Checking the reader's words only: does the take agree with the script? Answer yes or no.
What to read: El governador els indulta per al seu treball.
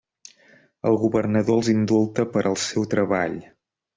yes